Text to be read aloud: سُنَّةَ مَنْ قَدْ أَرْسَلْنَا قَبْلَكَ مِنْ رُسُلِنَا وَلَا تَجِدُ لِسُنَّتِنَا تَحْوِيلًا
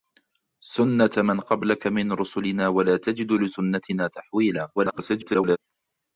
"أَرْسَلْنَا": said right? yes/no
no